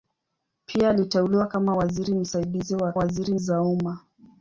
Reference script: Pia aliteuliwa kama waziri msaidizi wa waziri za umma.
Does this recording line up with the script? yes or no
yes